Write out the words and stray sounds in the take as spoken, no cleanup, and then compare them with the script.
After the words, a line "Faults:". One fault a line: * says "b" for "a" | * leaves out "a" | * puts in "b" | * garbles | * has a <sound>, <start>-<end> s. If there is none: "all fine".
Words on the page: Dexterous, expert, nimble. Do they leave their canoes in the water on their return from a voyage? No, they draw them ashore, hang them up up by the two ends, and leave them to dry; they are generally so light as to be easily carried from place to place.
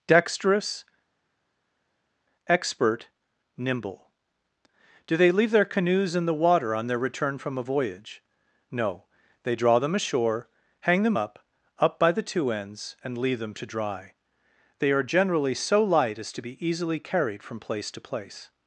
Dexterous, expert, nimble. Do they leave their canoes in the water on their return from a voyage? No, they draw them ashore, hang them up up by the two ends, and leave them to dry; they are generally so light as to be easily carried from place to place.
Faults:
all fine